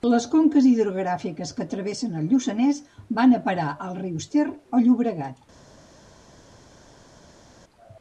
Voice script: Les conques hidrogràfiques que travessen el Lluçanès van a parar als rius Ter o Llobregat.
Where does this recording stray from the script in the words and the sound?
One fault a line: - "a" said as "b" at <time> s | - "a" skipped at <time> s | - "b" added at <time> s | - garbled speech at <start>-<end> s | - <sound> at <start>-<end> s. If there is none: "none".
none